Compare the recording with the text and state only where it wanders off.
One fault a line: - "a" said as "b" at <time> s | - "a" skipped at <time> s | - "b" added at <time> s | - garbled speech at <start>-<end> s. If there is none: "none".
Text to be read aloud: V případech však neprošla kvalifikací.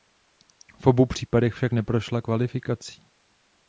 - "obou" added at 0.9 s